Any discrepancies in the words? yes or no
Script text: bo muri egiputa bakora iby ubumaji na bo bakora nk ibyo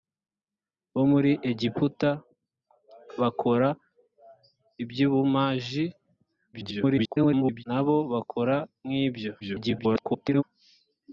yes